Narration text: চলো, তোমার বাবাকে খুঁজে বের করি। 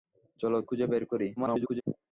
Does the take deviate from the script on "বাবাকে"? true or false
true